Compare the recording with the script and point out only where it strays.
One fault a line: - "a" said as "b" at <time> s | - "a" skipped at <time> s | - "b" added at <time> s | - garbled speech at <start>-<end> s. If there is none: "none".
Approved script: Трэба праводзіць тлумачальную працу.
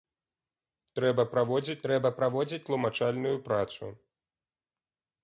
- "трэба праводзіць" added at 1.9 s